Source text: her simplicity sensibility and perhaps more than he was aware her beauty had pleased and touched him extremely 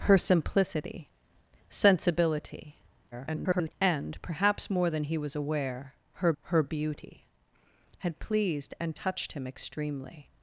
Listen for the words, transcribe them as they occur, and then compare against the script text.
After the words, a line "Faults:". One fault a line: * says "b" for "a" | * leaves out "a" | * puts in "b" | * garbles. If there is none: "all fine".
her simplicity sensibility [garbled] and perhaps more than he was aware her her beauty had pleased and touched him extremely
Faults:
* garbles
* puts in "her"